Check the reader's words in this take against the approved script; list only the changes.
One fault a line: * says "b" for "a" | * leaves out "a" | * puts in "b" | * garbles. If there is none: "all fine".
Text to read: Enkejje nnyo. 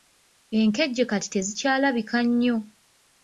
* puts in "kati tezikyalabika"